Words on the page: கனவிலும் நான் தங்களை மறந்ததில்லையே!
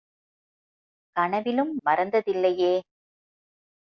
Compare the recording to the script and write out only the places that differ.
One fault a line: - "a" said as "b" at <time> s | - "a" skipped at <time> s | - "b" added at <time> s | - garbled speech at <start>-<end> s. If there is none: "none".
- "நான் தங்களை" skipped at 1.7 s